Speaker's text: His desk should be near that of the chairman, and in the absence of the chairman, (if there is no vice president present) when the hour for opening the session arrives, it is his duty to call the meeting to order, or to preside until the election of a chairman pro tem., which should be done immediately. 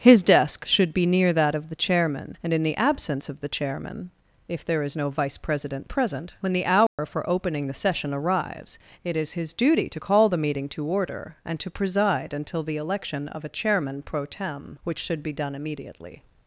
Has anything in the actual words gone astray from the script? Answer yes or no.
yes